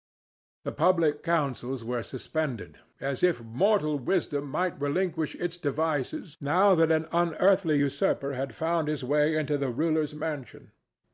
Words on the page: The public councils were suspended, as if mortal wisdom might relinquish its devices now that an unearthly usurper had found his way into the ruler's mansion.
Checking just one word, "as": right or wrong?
right